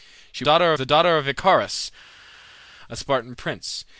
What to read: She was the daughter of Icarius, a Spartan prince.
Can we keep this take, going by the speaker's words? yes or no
no